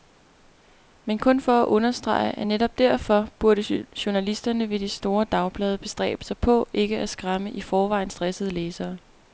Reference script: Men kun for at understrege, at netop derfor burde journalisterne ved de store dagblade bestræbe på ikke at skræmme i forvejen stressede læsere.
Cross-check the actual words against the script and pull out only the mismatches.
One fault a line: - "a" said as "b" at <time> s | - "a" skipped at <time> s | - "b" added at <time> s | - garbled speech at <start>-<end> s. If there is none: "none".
- "sig" added at 6.2 s